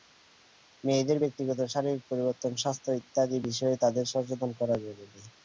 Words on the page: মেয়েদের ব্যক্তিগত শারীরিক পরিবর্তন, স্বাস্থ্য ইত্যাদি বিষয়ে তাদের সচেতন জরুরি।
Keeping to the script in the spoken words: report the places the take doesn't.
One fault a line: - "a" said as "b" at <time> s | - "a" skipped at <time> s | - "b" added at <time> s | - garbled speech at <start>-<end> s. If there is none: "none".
- "করা" added at 4.6 s